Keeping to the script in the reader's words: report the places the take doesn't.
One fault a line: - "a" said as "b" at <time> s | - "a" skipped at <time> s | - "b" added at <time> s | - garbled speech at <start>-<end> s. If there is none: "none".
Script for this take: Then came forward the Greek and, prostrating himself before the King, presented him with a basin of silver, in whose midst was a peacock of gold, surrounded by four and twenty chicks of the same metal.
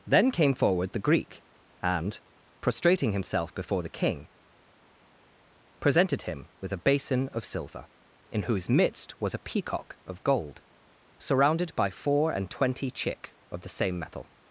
- "chicks" said as "chick" at 12.9 s